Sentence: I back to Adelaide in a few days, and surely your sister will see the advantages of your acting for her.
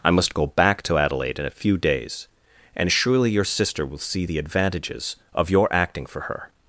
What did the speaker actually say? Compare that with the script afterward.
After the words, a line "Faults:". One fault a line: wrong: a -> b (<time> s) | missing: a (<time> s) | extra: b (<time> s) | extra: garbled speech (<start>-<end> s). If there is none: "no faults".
I must go back to Adelaide in a few days, and surely your sister will see the advantages of your acting for her.
Faults:
extra: must go (0.1 s)